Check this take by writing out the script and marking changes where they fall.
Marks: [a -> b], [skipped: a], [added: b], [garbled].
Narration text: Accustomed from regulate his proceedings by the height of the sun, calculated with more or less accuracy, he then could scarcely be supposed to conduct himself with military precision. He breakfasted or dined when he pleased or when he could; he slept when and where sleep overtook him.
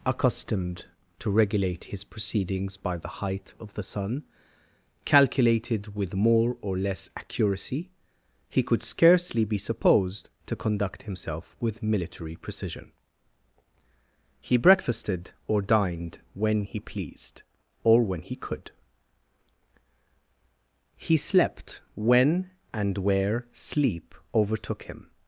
Accustomed [from -> to] regulate his proceedings by the height of the sun, calculated with more or less accuracy, he [skipped: then] could scarcely be supposed to conduct himself with military precision. He breakfasted or dined when he pleased or when he could; he slept when and where sleep overtook him.